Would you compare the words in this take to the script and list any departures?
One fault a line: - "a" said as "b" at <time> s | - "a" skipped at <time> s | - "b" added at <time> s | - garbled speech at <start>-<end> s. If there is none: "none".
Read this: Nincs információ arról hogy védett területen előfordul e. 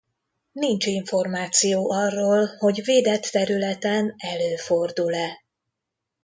none